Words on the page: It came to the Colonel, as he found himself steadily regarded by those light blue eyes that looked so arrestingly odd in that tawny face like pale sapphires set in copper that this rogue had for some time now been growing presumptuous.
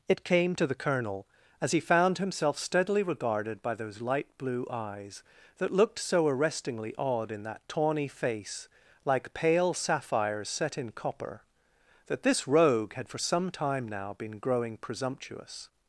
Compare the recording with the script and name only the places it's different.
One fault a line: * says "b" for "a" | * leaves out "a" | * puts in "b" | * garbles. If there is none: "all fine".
all fine